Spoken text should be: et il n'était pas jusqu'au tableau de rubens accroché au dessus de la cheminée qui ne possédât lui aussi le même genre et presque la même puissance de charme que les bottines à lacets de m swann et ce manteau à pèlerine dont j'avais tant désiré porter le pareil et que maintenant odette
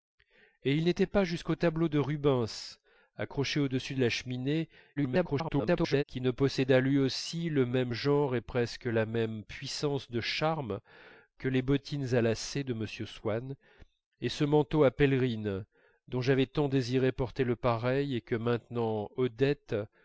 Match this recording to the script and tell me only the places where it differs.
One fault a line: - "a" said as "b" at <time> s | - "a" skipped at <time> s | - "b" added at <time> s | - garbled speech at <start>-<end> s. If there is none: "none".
- garbled speech at 5.0-6.0 s